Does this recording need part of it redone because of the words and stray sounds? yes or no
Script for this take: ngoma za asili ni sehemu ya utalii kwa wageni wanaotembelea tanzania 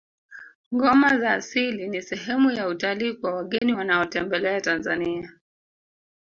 yes